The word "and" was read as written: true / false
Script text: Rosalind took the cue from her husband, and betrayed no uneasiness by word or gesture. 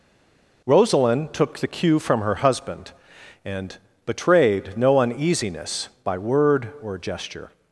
true